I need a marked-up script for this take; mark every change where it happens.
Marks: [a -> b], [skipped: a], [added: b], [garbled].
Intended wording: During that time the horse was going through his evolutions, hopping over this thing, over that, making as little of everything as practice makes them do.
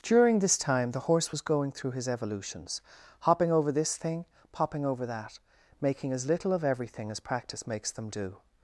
During [that -> this] time the horse was going through his evolutions, hopping over this thing, [added: popping] over that, making as little of everything as practice makes them do.